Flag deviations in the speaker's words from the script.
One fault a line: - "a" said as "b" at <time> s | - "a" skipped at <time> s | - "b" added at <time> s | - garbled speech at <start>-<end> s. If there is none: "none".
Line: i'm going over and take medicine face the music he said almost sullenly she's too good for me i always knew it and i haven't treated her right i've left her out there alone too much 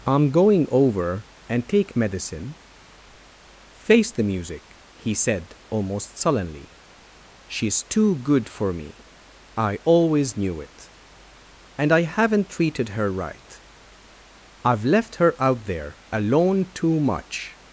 none